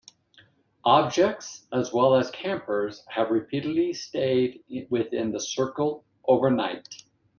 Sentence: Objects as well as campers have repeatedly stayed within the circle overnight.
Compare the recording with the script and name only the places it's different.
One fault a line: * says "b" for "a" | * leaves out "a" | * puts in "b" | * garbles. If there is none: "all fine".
all fine